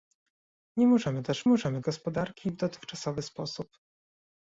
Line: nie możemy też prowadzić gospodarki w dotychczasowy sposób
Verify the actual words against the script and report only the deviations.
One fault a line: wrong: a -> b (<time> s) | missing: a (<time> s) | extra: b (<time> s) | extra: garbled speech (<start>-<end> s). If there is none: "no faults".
wrong: prowadzić -> możemy (1.5 s)